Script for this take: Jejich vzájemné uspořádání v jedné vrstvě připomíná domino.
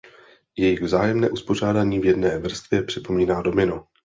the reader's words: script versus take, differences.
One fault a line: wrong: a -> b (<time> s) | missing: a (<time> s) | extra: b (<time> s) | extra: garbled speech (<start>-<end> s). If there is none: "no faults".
no faults